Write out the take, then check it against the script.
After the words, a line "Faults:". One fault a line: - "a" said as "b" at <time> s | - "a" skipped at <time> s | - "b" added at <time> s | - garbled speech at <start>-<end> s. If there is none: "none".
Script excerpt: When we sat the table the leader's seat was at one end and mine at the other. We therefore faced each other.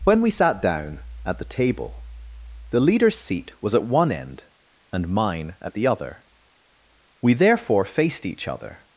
When we sat down at the table the leader's seat was at one end and mine at the other. We therefore faced each other.
Faults:
- "down at" added at 0.6 s